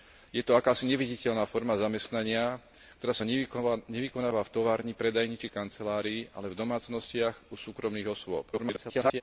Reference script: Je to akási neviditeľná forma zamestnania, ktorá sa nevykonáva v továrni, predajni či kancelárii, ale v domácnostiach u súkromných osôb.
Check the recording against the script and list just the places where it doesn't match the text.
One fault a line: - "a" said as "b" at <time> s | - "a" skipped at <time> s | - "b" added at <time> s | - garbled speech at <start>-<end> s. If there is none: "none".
- garbled speech at 8.5-9.2 s